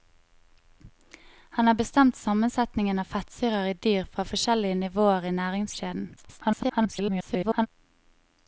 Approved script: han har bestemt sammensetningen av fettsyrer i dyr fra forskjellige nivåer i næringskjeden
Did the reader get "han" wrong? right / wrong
right